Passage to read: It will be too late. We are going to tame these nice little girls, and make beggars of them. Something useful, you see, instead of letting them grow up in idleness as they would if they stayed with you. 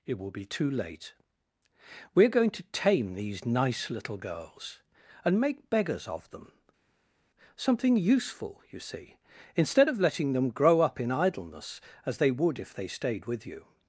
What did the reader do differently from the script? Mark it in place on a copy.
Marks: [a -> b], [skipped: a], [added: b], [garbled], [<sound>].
It will be too late. We are going to tame these nice little girls, and make beggars of them. Something useful, you see, instead of letting them grow up in idleness as they would if they stayed with you.